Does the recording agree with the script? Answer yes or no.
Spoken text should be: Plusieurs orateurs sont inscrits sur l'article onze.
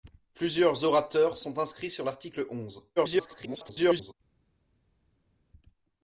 no